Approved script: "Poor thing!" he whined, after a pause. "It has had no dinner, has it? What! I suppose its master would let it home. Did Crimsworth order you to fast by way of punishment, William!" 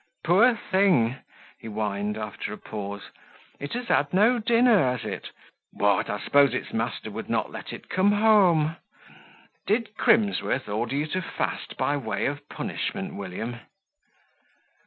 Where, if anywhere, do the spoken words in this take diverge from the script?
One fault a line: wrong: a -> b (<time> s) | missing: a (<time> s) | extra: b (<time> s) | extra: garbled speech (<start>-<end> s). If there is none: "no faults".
extra: not (7.3 s)
extra: come (7.9 s)